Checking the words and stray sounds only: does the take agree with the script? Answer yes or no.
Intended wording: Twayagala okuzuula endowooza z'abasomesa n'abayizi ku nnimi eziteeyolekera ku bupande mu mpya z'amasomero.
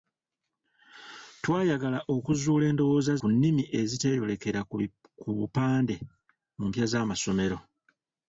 no